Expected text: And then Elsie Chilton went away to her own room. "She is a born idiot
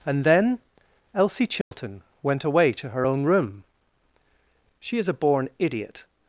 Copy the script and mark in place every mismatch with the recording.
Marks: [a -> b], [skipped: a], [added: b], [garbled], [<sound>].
And then Elsie Chilton [dropout] went away to her own room. "She is a born idiot